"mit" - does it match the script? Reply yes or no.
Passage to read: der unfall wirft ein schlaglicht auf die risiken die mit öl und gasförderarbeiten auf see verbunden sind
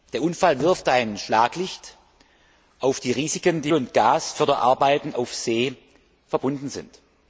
no